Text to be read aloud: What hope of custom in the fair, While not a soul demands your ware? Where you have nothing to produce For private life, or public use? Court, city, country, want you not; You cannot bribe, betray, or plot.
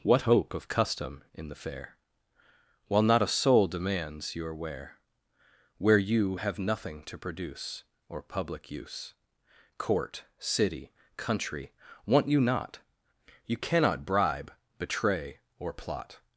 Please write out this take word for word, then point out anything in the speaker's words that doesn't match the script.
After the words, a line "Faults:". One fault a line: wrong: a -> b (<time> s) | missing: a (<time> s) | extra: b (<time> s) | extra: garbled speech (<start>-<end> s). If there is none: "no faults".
What hope of custom in the fair, While not a soul demands your ware? Where you have nothing to produce Or public use? Court, city, country, want you not; You cannot bribe, betray, or plot.
Faults:
missing: For private life (7.8 s)